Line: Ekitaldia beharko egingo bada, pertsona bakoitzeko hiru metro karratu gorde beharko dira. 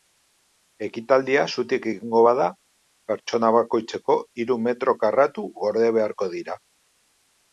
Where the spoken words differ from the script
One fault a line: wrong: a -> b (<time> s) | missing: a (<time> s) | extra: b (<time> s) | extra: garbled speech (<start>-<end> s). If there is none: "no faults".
wrong: beharko -> zutik (1.5 s)